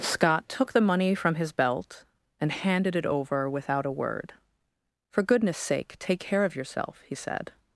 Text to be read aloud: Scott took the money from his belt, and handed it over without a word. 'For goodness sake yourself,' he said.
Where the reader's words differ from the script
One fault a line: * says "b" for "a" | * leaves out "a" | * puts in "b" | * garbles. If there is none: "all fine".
* puts in "take care of"